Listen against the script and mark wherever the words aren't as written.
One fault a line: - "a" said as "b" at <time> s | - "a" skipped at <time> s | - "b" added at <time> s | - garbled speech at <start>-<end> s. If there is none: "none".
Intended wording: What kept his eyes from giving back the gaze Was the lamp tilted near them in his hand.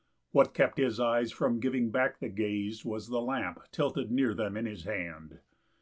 none